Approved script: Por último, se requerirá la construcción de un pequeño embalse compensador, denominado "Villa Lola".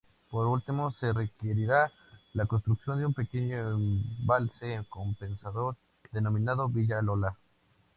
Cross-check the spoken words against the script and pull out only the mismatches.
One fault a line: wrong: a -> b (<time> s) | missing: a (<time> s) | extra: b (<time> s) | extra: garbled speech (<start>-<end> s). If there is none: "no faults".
no faults